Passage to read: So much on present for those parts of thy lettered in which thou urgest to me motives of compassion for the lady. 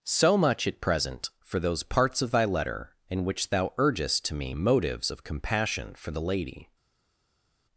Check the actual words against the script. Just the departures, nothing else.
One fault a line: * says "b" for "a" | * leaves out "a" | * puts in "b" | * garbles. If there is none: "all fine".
* says "at" for "on"
* says "letter" for "lettered"